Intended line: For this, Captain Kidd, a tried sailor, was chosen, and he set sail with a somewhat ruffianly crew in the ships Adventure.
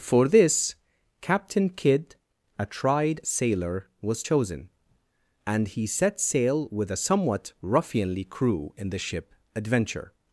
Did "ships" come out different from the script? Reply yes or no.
yes